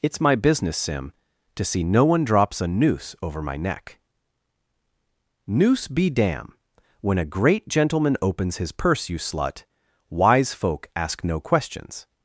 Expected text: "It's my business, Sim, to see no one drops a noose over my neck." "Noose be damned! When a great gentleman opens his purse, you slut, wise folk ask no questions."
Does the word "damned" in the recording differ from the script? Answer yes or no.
yes